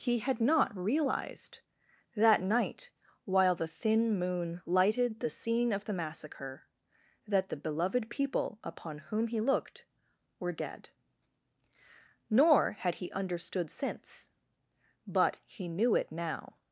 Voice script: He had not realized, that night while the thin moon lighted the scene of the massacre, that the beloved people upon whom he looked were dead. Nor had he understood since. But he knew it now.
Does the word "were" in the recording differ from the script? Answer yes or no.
no